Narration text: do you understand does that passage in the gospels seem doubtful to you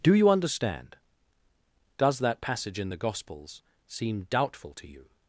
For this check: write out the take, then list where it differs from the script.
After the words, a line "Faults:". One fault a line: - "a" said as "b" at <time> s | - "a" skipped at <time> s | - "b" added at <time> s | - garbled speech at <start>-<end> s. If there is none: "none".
do you understand does that passage in the gospels seem doubtful to you
Faults:
none